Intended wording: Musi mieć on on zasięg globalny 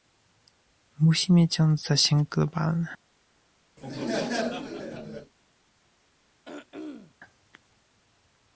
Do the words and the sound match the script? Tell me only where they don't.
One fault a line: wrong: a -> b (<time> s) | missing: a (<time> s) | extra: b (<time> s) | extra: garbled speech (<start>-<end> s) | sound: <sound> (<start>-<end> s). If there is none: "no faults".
missing: on (1.8 s)
sound: laugh (3.8-5.3 s)
sound: throat clearing (6.4-7.1 s)